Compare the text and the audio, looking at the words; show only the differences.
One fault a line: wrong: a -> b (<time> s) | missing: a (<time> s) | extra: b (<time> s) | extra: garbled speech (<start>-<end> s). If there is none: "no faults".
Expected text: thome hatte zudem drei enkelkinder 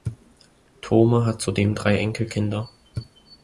wrong: hatte -> hat (1.3 s)